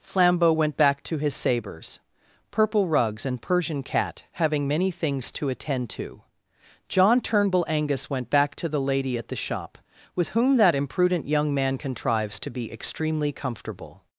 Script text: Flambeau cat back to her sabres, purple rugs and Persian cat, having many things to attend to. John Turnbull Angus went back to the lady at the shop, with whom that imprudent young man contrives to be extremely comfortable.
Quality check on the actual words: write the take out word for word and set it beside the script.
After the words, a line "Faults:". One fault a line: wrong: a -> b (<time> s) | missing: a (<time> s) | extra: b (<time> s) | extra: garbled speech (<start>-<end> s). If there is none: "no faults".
Flambeau went back to his sabres, purple rugs and Persian cat, having many things to attend to. John Turnbull Angus went back to the lady at the shop, with whom that imprudent young man contrives to be extremely comfortable.
Faults:
wrong: cat -> went (0.5 s)
wrong: her -> his (1.2 s)